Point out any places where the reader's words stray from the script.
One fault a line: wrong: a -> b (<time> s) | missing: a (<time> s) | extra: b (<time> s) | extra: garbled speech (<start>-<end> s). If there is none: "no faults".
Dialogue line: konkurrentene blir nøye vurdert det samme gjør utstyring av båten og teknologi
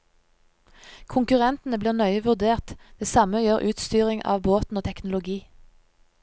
no faults